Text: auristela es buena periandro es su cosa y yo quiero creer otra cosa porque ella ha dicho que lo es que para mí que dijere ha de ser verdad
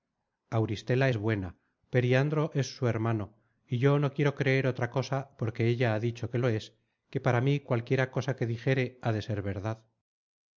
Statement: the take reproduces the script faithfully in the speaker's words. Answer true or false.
false